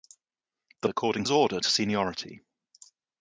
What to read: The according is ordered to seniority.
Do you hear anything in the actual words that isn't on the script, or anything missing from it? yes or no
no